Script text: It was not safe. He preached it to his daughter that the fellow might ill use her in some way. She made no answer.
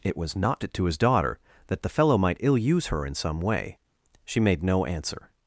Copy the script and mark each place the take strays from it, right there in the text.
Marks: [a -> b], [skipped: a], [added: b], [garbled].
It was not [skipped: safe. He preached] it to his daughter that the fellow might ill use her in some way. She made no answer.